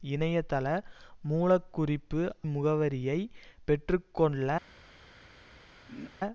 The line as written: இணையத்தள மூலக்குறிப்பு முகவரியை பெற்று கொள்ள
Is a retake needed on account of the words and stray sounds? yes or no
yes